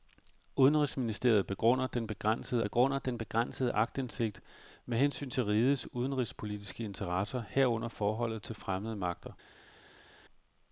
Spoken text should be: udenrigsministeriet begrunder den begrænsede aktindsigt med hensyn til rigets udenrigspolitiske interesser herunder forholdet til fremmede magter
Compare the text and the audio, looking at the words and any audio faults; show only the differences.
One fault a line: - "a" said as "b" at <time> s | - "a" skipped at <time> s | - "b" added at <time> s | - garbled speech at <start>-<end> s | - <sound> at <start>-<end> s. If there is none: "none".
- "begrunder den begrænsede" added at 2.6 s